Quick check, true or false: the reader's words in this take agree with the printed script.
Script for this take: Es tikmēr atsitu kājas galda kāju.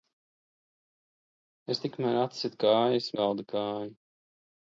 true